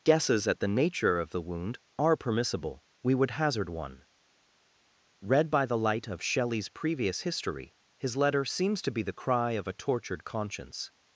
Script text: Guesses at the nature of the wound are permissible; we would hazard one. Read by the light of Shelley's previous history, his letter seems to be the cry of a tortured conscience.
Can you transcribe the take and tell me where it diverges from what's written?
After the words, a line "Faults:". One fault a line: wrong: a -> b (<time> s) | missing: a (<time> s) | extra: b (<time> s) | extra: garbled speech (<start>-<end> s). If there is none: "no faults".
Guesses at the nature of the wound are permissible; we would hazard one. Read by the light of Shelley's previous history, his letter seems to be the cry of a tortured conscience.
Faults:
no faults